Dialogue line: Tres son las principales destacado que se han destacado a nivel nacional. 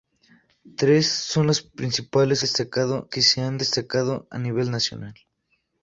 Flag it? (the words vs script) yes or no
no